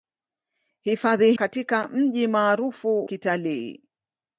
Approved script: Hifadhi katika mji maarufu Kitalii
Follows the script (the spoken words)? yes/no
yes